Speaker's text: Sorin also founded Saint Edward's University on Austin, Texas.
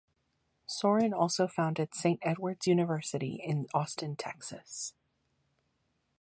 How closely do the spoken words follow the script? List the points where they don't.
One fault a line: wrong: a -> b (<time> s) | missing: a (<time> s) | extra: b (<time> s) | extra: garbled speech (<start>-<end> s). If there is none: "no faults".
wrong: on -> in (3.4 s)